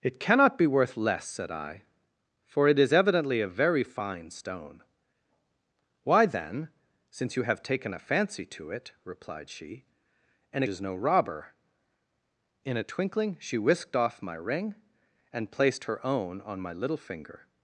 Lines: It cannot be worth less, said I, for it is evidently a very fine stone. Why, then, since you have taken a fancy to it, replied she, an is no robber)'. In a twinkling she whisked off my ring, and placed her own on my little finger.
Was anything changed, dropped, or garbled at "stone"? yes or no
no